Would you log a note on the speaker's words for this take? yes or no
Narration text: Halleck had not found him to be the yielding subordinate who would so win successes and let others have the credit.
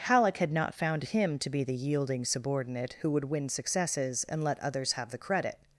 yes